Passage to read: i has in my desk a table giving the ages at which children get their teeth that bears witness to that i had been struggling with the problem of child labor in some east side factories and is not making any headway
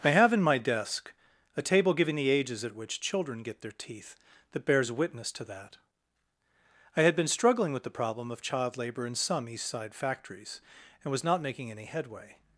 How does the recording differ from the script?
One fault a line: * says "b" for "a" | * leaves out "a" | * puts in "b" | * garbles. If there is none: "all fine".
* says "have" for "has"
* says "was" for "is"